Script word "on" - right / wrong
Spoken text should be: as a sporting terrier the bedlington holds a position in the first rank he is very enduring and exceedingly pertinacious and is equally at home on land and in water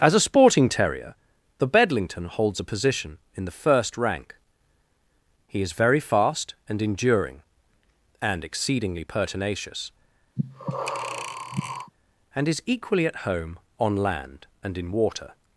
right